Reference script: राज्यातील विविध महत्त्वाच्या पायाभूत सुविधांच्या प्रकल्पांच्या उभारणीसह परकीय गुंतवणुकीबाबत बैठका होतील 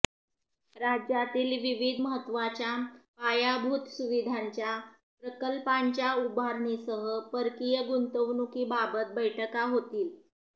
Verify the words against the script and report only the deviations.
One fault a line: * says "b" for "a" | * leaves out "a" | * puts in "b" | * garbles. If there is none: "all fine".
all fine